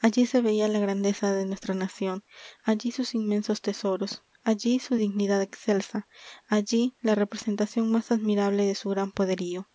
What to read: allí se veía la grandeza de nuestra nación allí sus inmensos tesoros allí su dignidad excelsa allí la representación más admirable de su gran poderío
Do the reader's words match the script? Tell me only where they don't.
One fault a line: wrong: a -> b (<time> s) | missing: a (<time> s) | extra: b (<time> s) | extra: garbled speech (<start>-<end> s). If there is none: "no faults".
no faults